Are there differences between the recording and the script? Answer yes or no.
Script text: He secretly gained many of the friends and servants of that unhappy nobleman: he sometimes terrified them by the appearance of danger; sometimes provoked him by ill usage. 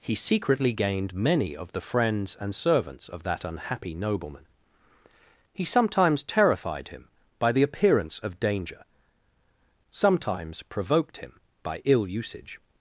yes